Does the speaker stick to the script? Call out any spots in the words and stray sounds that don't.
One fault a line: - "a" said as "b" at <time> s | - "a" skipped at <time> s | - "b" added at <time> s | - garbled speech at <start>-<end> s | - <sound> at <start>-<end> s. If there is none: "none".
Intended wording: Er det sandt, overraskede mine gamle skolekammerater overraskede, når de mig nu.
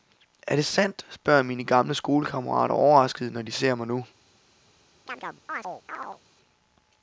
- "overraskede" said as "spørger" at 1.1 s
- "ser" added at 3.5 s
- chirp at 5.1-6.2 s